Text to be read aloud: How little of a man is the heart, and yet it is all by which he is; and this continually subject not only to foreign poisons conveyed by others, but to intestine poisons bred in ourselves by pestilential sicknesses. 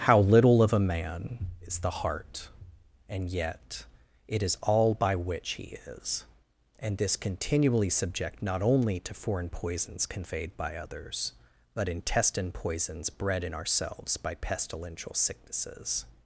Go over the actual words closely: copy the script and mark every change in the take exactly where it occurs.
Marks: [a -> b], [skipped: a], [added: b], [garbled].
How little of a man is the heart, and yet it is all by which he is; and this continually subject not only to foreign poisons conveyed by others, but [skipped: to] intestine poisons bred in ourselves by pestilential sicknesses.